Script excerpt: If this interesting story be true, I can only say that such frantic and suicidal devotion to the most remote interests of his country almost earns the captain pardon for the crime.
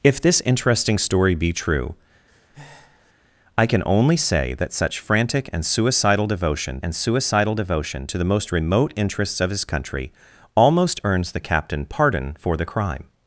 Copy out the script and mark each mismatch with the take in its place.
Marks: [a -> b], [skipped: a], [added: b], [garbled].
If this interesting story be true, I can only say that such frantic and suicidal devotion [added: and suicidal devotion] to the most remote interests of his country almost earns the captain pardon for the crime.